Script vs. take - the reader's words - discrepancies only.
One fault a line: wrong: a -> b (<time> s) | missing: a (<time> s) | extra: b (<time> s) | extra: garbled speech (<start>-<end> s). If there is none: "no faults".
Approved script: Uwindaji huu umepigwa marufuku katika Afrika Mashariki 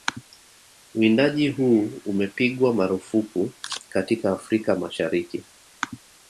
no faults